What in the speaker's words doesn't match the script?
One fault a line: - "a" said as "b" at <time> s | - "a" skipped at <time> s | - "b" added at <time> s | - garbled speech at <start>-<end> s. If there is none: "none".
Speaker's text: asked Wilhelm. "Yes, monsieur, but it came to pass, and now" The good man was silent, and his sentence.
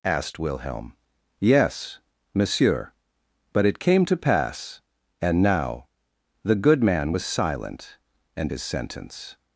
none